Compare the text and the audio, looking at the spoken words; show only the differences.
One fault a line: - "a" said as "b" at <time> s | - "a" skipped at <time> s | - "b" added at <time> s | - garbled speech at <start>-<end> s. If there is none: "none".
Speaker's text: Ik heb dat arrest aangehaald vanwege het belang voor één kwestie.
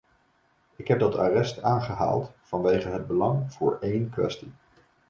none